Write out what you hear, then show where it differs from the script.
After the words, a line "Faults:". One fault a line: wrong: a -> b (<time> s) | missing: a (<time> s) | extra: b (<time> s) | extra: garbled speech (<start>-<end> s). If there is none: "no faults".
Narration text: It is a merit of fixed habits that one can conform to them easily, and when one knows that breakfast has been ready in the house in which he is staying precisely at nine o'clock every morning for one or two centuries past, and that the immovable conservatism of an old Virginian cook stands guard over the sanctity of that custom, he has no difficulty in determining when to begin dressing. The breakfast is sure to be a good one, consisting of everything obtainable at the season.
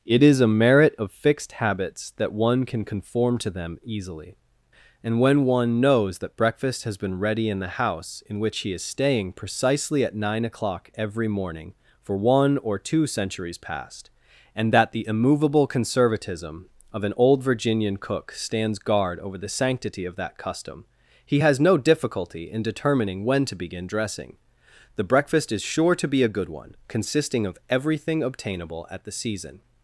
It is a merit of fixed habits that one can conform to them easily, and when one knows that breakfast has been ready in the house in which he is staying precisely at nine o'clock every morning for one or two centuries past, and that the immovable conservatism of an old Virginian cook stands guard over the sanctity of that custom, he has no difficulty in determining when to begin dressing. The breakfast is sure to be a good one, consisting of everything obtainable at the season.
Faults:
no faults